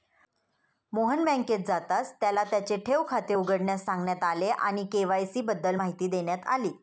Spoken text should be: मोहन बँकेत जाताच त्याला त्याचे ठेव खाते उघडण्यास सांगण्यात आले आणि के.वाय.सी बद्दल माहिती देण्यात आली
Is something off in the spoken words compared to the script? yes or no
no